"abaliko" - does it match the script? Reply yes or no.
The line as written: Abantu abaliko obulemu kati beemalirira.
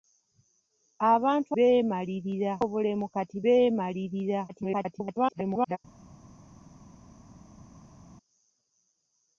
no